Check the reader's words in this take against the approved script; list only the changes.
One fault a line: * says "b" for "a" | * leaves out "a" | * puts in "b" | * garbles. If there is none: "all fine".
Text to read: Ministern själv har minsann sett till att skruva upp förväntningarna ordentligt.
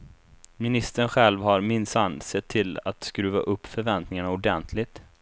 all fine